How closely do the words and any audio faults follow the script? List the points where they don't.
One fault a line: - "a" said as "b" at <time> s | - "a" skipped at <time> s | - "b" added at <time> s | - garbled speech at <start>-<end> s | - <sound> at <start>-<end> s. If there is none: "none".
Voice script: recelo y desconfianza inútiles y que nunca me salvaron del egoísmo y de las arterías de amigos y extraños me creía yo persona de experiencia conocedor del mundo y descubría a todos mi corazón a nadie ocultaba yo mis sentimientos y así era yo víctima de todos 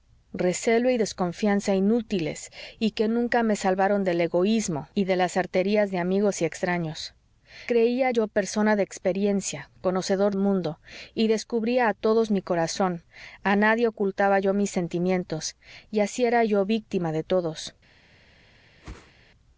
- "me" skipped at 7.1 s
- "del" skipped at 10.3 s
- whoosh at 18.8-19.1 s